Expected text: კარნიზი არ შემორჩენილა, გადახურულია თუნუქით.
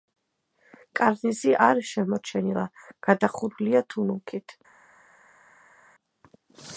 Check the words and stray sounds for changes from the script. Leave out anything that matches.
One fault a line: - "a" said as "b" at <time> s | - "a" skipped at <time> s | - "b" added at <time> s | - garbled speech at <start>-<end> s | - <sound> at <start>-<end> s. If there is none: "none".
none